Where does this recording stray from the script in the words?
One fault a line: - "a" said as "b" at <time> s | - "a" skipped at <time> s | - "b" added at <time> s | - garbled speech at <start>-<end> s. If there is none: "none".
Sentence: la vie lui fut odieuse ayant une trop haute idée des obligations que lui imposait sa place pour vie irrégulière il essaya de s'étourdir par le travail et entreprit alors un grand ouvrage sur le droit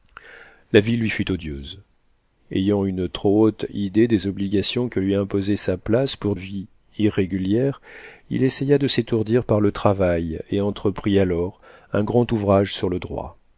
none